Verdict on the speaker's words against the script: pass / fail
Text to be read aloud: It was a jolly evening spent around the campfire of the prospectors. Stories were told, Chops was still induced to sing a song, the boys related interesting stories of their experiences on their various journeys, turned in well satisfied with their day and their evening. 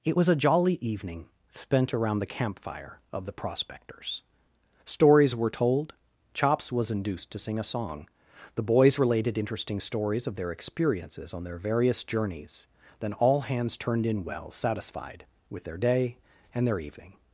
fail